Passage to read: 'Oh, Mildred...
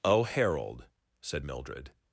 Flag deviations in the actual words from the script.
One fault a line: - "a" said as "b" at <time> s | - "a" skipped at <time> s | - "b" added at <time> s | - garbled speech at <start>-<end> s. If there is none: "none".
- "Harold said" added at 0.2 s